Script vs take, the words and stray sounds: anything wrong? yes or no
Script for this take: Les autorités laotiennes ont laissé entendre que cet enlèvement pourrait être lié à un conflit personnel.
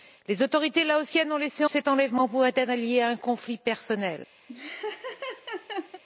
yes